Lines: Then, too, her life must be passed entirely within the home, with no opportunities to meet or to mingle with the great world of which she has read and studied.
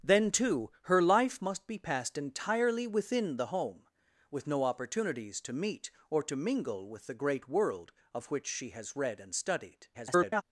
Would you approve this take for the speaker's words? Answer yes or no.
no